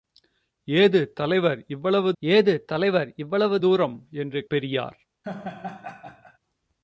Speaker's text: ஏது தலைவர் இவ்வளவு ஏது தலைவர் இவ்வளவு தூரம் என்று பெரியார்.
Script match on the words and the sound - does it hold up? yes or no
no